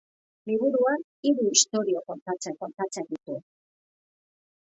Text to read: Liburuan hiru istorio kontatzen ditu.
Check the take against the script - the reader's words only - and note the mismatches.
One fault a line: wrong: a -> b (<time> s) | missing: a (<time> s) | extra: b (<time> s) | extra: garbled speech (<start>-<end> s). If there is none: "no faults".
extra: kontatzen (2.6 s)